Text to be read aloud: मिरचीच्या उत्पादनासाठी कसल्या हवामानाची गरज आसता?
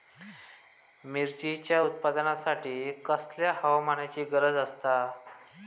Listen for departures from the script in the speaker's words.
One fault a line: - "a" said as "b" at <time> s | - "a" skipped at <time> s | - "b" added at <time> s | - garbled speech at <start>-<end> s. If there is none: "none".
none